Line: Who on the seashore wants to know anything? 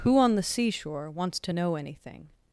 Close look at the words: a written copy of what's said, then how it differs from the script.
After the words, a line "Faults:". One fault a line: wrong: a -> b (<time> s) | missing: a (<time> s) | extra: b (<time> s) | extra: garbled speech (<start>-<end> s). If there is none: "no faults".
Who on the seashore wants to know anything?
Faults:
no faults